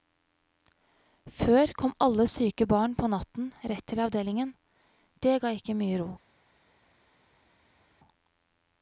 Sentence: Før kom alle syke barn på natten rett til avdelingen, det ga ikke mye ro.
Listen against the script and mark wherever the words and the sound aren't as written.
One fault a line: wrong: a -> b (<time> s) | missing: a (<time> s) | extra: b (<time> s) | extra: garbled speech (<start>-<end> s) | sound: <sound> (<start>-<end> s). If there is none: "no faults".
no faults